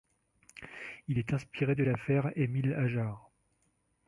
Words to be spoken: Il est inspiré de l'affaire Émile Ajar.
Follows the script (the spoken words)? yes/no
yes